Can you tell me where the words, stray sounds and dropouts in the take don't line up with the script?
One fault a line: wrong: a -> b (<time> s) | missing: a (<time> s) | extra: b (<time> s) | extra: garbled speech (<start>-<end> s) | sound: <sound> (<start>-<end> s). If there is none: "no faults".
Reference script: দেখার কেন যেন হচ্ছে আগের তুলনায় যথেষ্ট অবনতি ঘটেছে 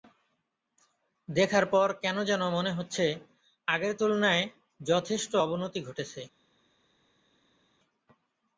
extra: পর (1.7 s)
extra: মনে (2.5 s)